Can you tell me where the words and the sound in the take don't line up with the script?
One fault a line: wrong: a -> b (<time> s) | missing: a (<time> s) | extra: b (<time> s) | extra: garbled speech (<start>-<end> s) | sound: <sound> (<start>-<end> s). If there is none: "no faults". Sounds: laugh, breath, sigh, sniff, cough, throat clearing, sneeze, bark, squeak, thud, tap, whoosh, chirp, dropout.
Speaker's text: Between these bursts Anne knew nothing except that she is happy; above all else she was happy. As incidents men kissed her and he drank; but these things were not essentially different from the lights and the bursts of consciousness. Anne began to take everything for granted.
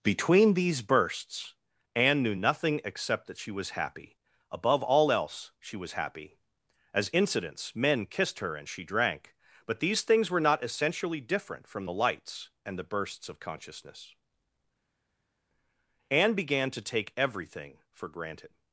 wrong: is -> was (3.5 s)
wrong: he -> she (8.7 s)